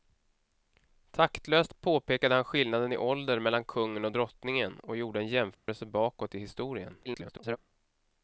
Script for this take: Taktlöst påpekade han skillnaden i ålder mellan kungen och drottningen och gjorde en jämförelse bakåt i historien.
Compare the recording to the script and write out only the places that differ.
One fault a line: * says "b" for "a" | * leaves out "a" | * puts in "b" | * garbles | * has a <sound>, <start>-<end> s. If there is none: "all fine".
* has a dropout, 5.5-5.7 s
* garbles